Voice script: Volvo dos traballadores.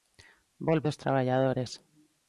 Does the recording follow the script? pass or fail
pass